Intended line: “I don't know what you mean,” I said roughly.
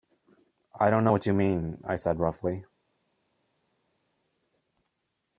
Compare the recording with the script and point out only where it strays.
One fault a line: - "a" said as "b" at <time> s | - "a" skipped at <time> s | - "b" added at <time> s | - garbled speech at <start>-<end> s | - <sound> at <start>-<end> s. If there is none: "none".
none